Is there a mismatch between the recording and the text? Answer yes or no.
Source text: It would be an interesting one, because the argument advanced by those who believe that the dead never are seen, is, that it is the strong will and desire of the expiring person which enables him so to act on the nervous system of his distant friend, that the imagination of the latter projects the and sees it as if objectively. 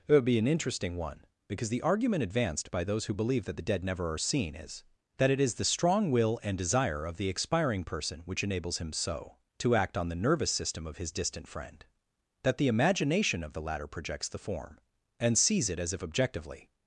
yes